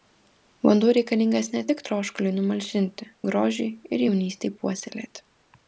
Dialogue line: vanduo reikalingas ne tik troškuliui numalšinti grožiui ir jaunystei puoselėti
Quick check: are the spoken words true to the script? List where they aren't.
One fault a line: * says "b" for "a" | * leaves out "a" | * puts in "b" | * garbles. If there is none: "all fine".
all fine